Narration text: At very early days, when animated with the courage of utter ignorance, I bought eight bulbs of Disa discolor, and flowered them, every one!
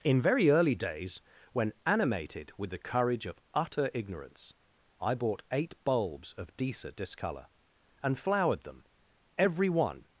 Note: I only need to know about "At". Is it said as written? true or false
false